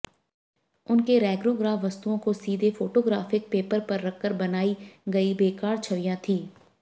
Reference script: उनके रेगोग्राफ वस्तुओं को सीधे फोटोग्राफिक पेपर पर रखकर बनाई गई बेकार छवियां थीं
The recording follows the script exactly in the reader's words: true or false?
true